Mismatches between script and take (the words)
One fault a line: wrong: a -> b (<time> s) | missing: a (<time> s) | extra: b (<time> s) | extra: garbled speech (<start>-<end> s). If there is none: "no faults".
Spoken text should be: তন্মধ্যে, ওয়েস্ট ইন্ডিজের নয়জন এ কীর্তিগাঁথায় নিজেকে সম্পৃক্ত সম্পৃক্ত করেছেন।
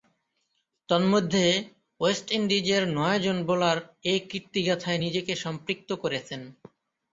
extra: বোলার (3.5 s)
missing: সম্পৃক্ত (5.9 s)